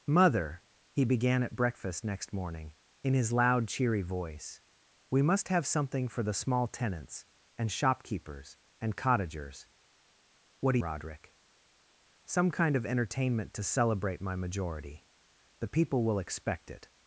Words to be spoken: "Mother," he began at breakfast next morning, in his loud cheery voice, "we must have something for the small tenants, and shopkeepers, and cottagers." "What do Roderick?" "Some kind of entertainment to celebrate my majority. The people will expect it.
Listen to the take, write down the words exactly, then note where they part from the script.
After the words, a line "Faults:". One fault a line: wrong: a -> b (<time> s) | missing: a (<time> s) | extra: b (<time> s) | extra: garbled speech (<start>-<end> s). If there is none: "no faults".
"Mother," he began at breakfast next morning, in his loud cheery voice, "we must have something for the small tenants, and shopkeepers, and cottagers." "What do Roderick?" "Some kind of entertainment to celebrate my majority. The people will expect it.
Faults:
no faults